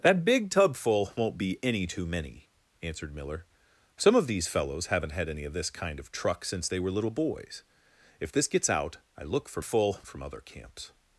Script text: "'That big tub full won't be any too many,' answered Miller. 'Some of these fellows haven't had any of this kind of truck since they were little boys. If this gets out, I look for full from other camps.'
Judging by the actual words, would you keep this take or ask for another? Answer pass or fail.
pass